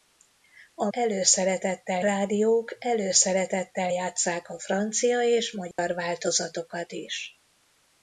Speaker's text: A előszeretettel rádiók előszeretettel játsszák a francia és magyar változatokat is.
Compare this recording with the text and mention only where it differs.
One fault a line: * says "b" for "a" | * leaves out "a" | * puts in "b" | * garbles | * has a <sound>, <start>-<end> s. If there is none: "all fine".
* has a dropout, 5.7-5.8 s